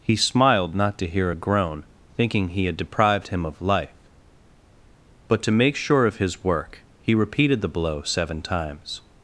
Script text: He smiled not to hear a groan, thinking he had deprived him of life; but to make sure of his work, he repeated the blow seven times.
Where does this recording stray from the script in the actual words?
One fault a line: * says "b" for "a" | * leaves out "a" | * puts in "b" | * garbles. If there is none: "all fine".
all fine